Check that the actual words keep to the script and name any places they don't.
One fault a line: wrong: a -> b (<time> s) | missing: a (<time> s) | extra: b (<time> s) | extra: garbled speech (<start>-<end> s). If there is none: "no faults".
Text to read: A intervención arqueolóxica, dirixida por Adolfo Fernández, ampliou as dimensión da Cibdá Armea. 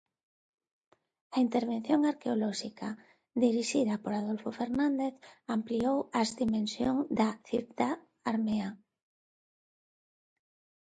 no faults